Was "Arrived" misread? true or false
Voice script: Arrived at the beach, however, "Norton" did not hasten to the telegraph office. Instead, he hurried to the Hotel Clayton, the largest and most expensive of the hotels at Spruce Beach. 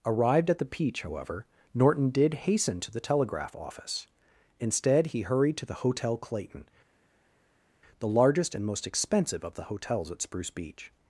false